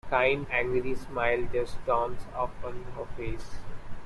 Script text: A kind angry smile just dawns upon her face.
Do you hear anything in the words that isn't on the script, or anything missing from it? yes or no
no